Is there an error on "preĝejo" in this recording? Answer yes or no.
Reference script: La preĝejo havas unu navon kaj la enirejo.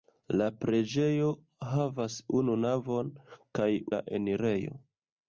no